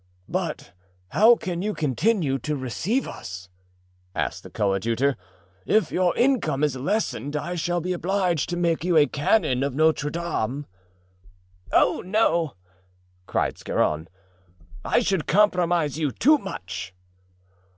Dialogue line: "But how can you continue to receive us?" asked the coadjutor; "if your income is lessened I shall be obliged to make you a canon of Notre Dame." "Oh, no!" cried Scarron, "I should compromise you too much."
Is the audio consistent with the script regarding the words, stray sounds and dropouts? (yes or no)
yes